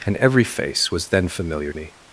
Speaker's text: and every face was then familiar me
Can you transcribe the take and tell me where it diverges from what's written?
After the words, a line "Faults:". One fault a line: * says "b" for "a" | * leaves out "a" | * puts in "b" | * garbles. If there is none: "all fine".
and every face was then familiar me
Faults:
all fine